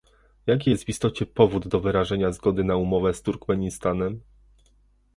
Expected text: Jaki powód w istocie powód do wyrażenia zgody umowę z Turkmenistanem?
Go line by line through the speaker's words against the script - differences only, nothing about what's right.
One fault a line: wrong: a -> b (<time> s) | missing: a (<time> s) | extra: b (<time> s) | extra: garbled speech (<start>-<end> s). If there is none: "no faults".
wrong: powód -> jest (0.7 s)
extra: na (2.6 s)